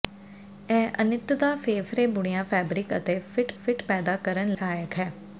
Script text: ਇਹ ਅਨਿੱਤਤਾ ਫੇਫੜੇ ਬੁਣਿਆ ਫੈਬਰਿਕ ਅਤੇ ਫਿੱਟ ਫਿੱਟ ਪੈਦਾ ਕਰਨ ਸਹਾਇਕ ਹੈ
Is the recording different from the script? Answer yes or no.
no